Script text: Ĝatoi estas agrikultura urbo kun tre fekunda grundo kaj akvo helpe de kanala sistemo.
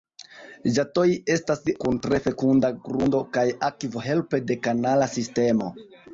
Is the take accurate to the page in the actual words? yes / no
no